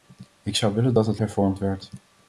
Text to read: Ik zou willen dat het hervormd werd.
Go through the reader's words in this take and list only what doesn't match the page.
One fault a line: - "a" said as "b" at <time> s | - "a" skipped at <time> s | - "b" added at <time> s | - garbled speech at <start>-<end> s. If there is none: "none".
none